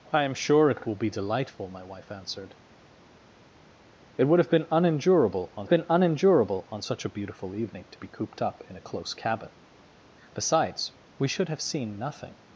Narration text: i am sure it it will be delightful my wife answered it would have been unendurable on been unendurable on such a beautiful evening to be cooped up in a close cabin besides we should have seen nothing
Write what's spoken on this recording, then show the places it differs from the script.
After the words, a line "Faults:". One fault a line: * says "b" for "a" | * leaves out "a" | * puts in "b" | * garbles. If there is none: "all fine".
i am sure it it will be delightful my wife answered it would have been unendurable on been unendurable on such a beautiful evening to be cooped up in a close cabin besides we should have seen nothing
Faults:
all fine